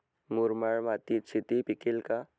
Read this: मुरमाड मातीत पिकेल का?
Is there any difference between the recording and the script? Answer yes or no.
yes